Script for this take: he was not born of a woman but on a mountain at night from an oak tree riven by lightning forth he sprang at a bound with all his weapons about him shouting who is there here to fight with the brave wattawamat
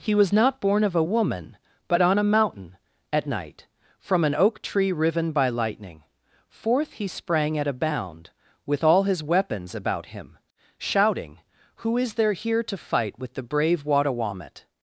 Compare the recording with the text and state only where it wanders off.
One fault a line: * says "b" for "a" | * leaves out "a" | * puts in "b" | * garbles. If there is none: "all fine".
all fine